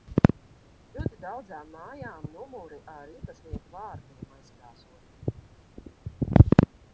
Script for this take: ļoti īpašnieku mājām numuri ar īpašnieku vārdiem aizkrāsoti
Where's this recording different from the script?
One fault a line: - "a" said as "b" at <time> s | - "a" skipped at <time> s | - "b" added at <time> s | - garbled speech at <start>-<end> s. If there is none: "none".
- "īpašnieku" said as "daudzām" at 1.2 s